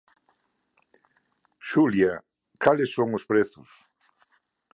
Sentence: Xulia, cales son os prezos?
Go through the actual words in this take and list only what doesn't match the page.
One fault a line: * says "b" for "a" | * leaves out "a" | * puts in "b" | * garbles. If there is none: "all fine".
all fine